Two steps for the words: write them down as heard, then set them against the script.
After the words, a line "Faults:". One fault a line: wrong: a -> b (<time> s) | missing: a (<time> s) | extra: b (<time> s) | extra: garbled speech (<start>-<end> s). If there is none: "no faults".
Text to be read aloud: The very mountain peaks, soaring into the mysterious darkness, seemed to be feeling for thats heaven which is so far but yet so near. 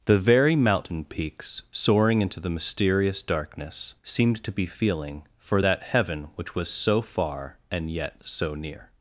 The very mountain peaks, soaring into the mysterious darkness, seemed to be feeling for that heaven which was so far and yet so near.
Faults:
wrong: thats -> that (5.6 s)
wrong: is -> was (6.5 s)
wrong: but -> and (7.7 s)